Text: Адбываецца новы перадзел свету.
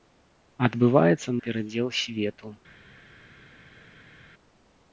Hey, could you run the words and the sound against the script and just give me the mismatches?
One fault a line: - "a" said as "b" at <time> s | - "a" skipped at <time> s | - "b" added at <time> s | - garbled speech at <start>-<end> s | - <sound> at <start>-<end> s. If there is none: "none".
- "новы" skipped at 1.4 s